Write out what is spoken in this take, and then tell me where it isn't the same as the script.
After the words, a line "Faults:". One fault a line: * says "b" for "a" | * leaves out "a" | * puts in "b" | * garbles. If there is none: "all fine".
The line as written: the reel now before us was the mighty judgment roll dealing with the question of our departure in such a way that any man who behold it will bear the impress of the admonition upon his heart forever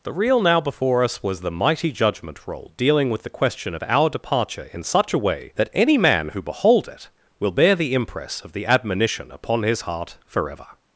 the reel now before us was the mighty judgment roll dealing with the question of our departure in such a way that any man who behold it will bear the impress of the admonition upon his heart forever
Faults:
all fine